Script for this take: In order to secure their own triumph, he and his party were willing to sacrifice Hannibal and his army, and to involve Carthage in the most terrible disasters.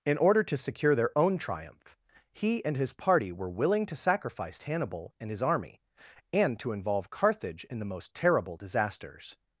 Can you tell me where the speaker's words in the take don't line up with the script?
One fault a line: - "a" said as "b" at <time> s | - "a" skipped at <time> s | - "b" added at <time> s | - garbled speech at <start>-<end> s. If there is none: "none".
none